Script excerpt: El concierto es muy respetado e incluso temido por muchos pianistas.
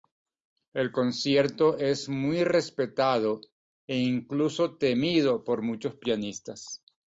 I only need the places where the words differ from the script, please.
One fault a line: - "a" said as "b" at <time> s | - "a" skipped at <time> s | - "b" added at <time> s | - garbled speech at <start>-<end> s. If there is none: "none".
none